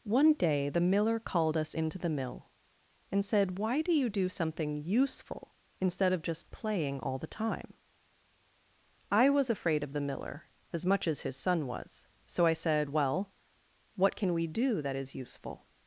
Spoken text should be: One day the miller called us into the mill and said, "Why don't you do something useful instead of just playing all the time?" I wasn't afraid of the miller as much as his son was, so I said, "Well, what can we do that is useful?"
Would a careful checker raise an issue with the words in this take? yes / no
yes